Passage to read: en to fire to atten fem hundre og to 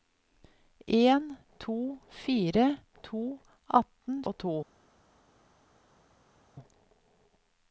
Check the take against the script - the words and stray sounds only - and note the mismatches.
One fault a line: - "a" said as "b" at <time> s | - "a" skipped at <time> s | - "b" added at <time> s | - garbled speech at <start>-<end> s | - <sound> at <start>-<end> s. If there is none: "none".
- "fem hundre" skipped at 4.2 s